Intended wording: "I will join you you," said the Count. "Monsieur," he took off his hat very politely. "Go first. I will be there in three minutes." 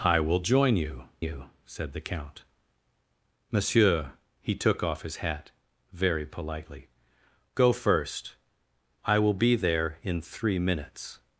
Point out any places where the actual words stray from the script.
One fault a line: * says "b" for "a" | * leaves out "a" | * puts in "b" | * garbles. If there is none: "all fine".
all fine